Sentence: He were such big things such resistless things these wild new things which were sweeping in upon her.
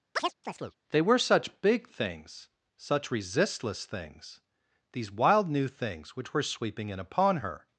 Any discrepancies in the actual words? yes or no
yes